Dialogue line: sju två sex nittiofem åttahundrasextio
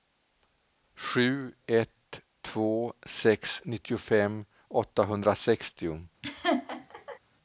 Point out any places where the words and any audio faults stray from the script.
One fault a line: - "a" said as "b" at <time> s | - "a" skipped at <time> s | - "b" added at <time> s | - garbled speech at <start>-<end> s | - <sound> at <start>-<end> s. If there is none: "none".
- "ett" added at 1.6 s
- laugh at 6.2-7.2 s